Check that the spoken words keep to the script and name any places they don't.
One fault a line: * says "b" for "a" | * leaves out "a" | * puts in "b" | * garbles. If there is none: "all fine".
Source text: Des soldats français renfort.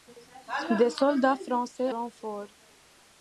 all fine